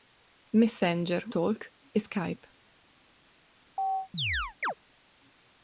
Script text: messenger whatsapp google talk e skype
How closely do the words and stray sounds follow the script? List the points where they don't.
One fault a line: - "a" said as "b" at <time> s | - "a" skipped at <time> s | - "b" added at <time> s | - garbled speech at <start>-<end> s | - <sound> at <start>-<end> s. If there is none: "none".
- "whatsapp google" skipped at 1.2 s
- chirp at 3.8-4.7 s